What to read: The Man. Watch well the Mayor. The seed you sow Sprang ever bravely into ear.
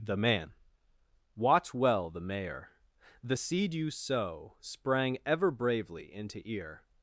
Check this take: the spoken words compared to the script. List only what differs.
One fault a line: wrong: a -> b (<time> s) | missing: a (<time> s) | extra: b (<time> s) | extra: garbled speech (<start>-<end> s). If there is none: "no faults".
no faults